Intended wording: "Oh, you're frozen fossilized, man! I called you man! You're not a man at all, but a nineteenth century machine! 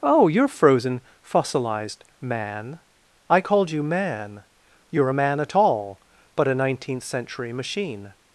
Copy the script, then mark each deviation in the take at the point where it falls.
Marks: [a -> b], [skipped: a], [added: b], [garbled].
"Oh, you're frozen fossilized, man! I called you man! You're [skipped: not] a man at all, but a nineteenth century machine!